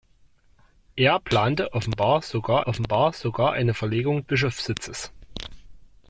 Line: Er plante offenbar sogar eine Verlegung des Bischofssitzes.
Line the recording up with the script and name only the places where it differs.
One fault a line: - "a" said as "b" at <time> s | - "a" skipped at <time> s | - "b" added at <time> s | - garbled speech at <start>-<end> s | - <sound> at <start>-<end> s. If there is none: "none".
- "offenbar sogar" added at 2.7 s
- "des" skipped at 4.2 s